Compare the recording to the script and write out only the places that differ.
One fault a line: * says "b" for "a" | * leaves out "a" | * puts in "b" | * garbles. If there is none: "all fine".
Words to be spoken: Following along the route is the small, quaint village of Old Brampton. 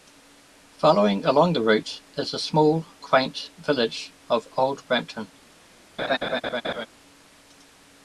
all fine